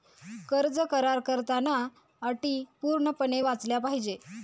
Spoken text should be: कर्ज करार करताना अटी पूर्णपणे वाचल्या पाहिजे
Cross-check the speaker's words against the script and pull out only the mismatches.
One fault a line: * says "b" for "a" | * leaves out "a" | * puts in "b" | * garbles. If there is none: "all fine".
all fine